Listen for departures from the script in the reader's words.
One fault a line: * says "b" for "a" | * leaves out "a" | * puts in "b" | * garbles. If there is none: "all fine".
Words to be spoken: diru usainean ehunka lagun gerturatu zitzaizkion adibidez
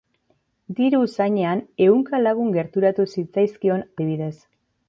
all fine